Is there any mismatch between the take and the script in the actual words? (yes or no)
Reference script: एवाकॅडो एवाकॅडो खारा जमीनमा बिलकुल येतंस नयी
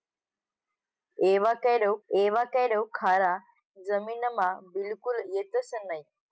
no